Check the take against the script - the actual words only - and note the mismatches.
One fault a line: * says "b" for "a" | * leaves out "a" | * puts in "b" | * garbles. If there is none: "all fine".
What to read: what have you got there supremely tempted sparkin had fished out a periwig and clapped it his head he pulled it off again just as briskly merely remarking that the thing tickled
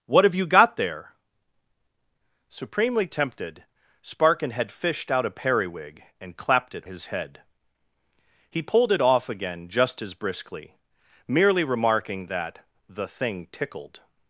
all fine